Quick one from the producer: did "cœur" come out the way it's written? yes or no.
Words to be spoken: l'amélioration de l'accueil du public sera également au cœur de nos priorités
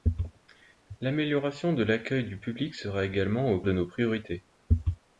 no